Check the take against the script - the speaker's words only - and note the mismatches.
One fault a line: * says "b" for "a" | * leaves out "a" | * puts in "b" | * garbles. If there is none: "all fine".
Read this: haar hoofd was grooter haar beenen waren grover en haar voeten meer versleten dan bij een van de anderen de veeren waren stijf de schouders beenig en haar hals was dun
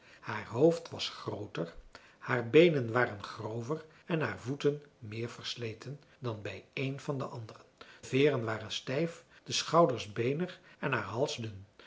* leaves out "de"
* leaves out "was"